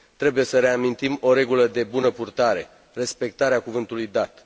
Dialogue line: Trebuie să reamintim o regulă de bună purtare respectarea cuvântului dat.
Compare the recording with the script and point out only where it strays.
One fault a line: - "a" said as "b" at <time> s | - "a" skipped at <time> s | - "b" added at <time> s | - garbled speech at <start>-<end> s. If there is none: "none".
none